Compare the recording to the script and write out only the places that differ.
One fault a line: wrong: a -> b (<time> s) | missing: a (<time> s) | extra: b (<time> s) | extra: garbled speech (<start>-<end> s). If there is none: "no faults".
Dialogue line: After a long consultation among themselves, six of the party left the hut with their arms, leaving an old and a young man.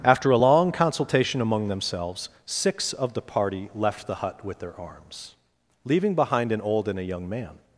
extra: behind (6.1 s)